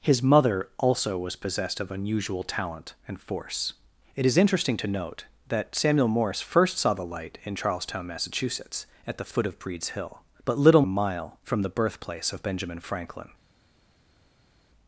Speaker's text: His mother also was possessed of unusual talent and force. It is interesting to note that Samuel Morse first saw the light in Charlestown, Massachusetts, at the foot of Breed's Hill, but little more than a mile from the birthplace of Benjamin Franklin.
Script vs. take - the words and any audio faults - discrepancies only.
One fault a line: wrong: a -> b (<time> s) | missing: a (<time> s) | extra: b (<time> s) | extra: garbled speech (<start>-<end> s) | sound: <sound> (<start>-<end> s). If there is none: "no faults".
missing: more than (10.8 s)